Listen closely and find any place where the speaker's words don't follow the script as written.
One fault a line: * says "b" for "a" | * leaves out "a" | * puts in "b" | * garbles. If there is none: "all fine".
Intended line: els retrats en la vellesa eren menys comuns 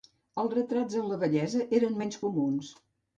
all fine